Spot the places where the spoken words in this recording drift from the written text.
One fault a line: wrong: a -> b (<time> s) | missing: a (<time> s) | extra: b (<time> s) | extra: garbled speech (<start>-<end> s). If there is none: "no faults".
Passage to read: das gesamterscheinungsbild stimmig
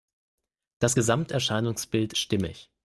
no faults